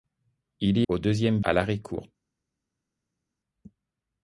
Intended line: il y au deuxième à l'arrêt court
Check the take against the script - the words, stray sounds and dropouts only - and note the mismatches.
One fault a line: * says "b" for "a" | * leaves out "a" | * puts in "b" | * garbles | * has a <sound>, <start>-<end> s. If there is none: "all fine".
all fine